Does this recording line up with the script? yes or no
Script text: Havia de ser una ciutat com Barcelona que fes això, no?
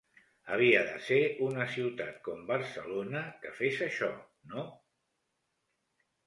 yes